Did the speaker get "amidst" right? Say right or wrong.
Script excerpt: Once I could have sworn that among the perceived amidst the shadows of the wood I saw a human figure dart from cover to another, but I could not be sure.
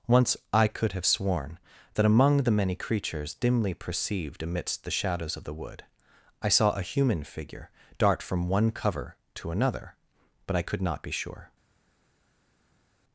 right